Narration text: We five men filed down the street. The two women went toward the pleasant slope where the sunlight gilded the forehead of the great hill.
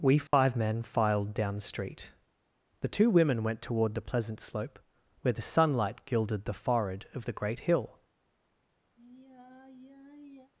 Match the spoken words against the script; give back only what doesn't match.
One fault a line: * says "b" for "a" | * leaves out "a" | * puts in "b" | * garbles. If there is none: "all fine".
all fine